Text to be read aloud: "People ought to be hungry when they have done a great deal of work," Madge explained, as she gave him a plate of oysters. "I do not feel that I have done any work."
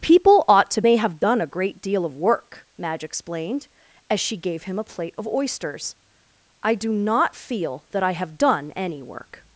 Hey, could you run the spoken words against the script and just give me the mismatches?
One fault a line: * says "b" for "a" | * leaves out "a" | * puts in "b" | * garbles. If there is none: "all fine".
* leaves out "be hungry when"